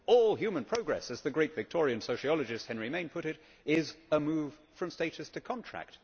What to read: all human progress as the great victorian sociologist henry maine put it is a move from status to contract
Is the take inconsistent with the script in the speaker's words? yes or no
no